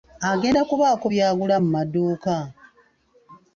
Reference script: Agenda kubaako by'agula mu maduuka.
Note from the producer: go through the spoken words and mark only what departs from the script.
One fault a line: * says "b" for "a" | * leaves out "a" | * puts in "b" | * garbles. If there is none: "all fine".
all fine